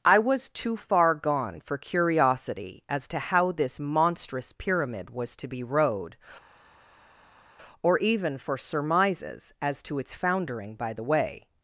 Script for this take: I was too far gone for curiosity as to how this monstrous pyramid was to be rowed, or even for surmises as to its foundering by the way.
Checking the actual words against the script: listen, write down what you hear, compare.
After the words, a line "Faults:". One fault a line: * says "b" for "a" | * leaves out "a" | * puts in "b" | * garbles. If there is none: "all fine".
I was too far gone for curiosity as to how this monstrous pyramid was to be rowed, or even for surmises as to its foundering by the way.
Faults:
all fine